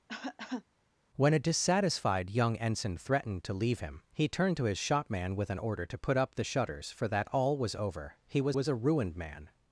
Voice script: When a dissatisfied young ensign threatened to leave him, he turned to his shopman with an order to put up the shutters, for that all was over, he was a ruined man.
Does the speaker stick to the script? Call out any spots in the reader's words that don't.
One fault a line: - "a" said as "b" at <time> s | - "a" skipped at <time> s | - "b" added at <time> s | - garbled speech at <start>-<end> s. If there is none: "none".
- "was" added at 8.5 s